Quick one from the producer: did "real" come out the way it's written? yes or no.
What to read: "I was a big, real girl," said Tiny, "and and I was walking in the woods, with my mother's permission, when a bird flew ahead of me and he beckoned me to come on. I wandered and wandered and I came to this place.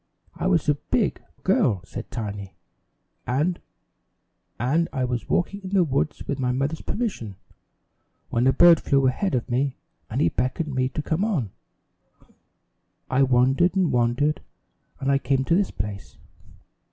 no